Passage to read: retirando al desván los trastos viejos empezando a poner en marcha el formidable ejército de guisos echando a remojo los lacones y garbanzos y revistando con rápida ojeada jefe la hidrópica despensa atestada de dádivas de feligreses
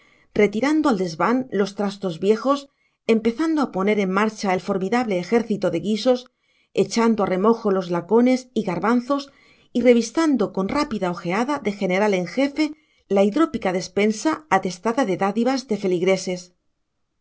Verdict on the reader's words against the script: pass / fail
fail